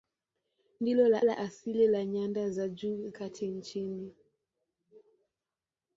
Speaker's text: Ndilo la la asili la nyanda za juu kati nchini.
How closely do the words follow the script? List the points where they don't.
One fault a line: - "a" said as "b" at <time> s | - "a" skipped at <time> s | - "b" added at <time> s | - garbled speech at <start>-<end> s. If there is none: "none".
none